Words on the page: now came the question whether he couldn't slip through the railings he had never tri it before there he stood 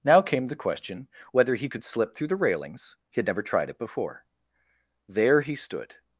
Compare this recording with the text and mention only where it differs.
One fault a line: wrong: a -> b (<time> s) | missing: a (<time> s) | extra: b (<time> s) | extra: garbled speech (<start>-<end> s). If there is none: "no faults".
wrong: couldn't -> could (1.7 s)
wrong: tri -> tried (3.4 s)